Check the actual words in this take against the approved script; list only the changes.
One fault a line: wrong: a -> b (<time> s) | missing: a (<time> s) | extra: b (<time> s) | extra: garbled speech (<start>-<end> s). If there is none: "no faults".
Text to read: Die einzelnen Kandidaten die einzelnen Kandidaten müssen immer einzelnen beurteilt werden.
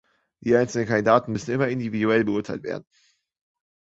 missing: die einzelnen Kandidaten (1.3 s)
wrong: einzelnen -> individuell (1.7 s)